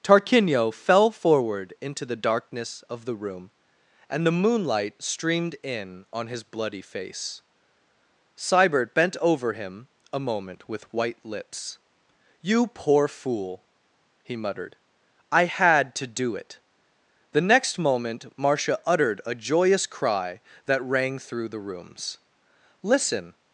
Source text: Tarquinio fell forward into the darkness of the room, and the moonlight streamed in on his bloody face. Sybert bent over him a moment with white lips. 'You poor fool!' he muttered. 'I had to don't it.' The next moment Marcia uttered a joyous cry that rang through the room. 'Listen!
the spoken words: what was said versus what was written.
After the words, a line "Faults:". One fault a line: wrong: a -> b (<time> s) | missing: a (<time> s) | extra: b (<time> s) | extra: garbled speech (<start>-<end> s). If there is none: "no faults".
Tarquinio fell forward into the darkness of the room, and the moonlight streamed in on his bloody face. Sybert bent over him a moment with white lips. 'You poor fool!' he muttered. 'I had to do it.' The next moment Marcia uttered a joyous cry that rang through the rooms. 'Listen!
Faults:
wrong: don't -> do (16.1 s)
wrong: room -> rooms (21.6 s)